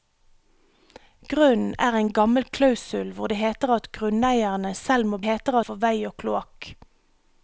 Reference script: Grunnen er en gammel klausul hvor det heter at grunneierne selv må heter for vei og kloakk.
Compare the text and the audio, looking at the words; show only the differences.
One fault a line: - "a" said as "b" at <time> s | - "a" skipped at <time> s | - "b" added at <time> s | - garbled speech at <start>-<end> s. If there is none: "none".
none